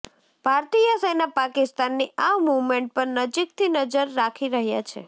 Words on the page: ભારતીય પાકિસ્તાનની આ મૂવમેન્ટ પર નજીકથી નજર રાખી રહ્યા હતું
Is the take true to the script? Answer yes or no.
no